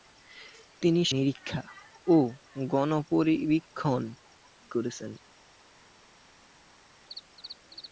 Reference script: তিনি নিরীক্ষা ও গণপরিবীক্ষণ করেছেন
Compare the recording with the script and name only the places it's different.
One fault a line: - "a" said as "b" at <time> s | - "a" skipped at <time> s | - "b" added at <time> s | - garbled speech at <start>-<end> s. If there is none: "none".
none